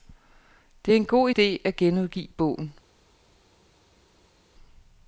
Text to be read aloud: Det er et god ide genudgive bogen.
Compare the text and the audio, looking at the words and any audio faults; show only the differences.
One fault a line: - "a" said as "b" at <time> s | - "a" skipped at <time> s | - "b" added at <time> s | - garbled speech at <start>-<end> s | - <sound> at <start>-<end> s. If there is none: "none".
- "et" said as "en" at 1.0 s
- "at" added at 1.6 s